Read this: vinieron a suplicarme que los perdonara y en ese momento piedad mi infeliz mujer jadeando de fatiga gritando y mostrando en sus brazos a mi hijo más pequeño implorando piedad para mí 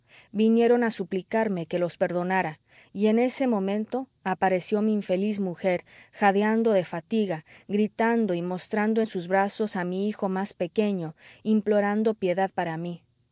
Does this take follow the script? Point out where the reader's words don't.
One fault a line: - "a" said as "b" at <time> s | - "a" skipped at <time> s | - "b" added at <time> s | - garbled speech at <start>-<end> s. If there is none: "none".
- "piedad" said as "apareció" at 4.2 s